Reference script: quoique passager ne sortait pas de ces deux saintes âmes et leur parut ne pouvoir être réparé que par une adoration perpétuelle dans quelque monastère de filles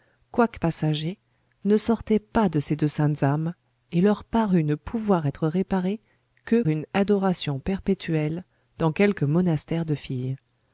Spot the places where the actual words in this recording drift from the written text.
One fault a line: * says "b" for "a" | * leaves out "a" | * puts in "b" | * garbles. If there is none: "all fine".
* leaves out "par"